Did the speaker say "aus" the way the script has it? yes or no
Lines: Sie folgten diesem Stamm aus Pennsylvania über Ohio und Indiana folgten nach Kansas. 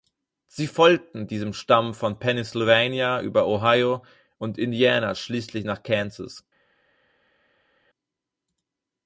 no